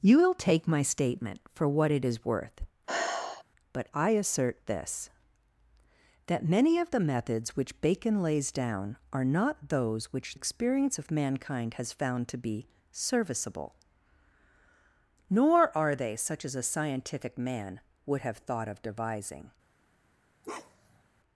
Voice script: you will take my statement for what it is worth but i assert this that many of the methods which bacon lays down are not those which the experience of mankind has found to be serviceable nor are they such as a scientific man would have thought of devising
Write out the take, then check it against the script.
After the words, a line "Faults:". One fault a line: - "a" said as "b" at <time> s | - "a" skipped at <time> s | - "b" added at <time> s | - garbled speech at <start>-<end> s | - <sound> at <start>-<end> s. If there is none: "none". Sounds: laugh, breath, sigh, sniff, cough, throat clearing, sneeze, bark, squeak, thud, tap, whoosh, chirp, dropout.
you will take my statement for what it is worth but i assert this that many of the methods which bacon lays down are not those which experience of mankind has found to be serviceable nor are they such as a scientific man would have thought of devising
Faults:
- sigh at 2.9-3.4 s
- "the" skipped at 10.4 s
- bark at 20.4-21.0 s